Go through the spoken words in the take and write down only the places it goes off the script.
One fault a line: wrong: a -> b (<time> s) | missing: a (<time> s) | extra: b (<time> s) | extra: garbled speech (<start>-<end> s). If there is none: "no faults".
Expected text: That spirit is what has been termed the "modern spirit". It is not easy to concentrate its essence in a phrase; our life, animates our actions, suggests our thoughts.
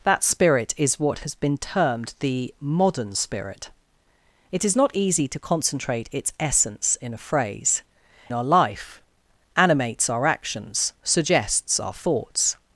no faults